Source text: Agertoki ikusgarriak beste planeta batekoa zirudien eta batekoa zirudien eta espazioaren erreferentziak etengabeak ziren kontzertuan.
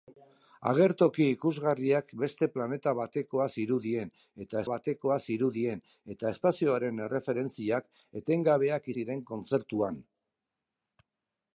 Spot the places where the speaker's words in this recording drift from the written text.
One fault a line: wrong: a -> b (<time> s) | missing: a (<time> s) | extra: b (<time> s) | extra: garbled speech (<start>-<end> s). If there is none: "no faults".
no faults